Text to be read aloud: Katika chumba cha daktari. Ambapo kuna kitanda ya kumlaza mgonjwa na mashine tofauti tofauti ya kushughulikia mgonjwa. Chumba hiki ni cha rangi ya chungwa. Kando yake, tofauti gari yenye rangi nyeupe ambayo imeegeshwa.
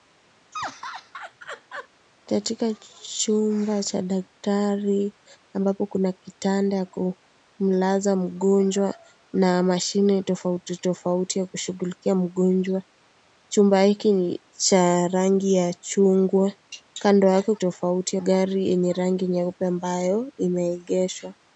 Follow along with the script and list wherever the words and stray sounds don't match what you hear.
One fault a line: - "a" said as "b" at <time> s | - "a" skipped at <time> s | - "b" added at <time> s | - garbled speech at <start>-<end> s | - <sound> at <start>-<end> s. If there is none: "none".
- laugh at 0.5-1.9 s